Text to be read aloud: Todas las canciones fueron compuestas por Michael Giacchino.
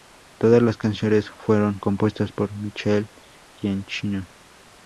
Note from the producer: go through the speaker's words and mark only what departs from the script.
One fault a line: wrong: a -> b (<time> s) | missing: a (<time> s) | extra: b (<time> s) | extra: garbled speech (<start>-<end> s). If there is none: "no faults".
no faults